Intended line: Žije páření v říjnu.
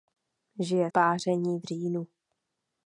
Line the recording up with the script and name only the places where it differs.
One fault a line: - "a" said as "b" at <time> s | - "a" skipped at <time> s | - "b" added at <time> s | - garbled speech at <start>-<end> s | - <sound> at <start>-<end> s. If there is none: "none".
none